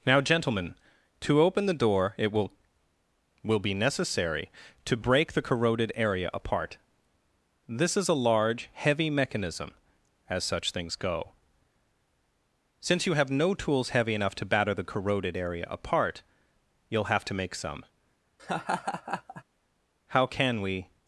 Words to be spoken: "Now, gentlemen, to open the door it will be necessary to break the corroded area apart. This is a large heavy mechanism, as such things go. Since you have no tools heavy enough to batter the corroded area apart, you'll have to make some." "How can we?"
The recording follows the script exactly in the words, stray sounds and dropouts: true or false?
false